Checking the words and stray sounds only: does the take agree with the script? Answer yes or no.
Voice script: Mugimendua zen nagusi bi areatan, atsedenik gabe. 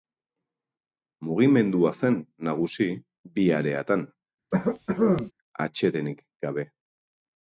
no